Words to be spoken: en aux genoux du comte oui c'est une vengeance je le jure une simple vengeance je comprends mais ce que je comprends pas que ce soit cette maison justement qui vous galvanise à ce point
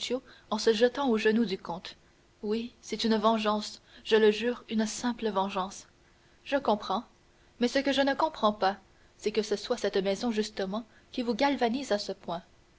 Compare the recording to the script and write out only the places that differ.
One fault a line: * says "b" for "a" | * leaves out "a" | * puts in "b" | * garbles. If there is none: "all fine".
* puts in "se jetant"
* puts in "ne"
* puts in "c'est"